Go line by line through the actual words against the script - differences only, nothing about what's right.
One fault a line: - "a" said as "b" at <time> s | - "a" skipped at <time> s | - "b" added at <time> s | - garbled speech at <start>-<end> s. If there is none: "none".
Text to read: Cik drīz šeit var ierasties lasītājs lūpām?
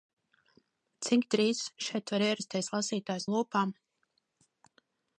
none